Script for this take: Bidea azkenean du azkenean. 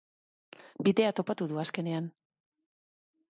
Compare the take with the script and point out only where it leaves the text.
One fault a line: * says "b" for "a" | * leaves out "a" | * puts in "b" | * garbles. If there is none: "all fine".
* says "topatu" for "azkenean"